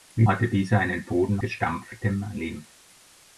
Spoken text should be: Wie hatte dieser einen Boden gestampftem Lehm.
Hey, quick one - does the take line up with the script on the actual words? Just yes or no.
yes